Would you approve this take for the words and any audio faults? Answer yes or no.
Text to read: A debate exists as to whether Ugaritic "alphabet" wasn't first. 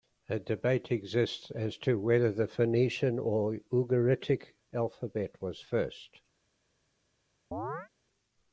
no